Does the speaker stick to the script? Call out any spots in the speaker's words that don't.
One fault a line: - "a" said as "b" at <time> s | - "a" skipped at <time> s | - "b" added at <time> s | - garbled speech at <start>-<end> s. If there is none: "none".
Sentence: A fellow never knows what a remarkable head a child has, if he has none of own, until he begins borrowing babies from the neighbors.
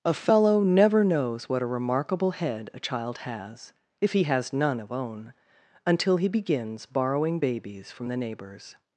none